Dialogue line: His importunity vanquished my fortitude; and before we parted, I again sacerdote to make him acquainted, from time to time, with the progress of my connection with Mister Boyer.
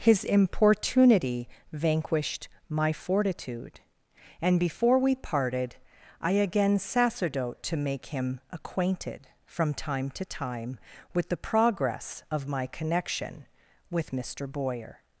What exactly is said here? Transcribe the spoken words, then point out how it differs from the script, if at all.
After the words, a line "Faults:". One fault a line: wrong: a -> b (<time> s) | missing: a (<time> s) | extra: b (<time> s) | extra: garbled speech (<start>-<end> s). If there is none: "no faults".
His importunity vanquished my fortitude; and before we parted, I again sacerdote to make him acquainted, from time to time, with the progress of my connection with Mister Boyer.
Faults:
no faults